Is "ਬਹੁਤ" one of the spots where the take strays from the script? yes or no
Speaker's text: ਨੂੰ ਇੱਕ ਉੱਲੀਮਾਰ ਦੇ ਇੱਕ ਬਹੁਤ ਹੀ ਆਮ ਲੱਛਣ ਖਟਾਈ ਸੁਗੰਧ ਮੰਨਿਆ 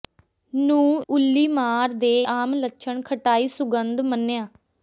yes